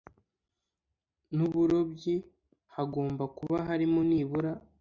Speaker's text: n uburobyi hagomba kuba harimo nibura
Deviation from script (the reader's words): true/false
false